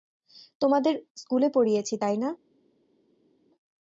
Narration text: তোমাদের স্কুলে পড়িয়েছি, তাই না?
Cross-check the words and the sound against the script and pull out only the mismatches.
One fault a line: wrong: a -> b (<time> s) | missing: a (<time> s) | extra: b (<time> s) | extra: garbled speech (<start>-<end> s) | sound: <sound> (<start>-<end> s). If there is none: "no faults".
no faults